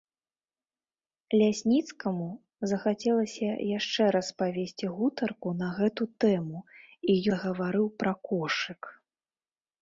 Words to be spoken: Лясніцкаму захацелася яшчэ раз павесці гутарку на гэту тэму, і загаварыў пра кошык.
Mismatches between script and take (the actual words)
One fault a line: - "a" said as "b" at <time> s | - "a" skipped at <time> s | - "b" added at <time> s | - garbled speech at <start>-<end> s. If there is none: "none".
none